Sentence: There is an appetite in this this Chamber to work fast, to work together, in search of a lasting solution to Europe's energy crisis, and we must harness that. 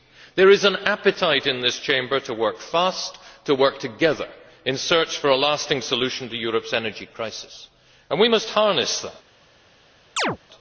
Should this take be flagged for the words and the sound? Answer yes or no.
yes